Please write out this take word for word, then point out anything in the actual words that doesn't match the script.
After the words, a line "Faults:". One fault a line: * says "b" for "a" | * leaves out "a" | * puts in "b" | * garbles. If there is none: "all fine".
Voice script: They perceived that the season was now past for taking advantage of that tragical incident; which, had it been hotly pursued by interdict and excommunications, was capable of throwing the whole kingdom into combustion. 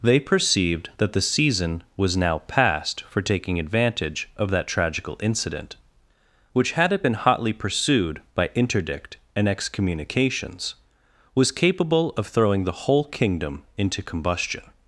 They perceived that the season was now past for taking advantage of that tragical incident; which, had it been hotly pursued by interdict and excommunications, was capable of throwing the whole kingdom into combustion.
Faults:
all fine